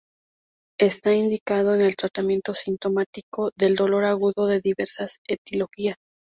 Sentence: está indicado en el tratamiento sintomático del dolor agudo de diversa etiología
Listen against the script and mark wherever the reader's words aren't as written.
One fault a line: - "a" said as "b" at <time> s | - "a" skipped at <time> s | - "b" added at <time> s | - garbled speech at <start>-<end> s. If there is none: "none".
none